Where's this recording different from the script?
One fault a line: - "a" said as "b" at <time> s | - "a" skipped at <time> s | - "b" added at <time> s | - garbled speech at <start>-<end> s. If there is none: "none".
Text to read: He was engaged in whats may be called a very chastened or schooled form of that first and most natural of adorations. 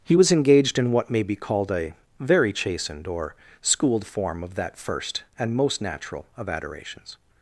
- "whats" said as "what" at 0.9 s